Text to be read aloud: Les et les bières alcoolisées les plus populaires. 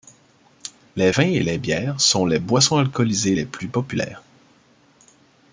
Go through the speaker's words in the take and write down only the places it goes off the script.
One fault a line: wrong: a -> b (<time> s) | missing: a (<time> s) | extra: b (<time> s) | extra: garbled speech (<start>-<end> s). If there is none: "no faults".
extra: vins (1.1 s)
extra: sont les boissons (2.0 s)